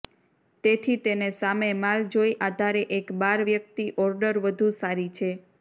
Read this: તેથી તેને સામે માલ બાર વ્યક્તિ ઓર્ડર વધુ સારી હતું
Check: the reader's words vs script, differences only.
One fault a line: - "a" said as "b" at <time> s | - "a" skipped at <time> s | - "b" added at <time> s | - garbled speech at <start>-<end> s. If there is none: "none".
- "જોઈ આધારે એક" added at 2.1 s
- "હતું" said as "છે" at 5.2 s